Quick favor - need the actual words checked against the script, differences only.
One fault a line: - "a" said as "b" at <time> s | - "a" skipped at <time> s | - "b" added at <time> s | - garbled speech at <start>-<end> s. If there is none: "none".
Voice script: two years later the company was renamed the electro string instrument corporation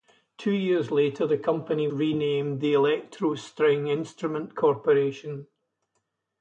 - "was" skipped at 1.9 s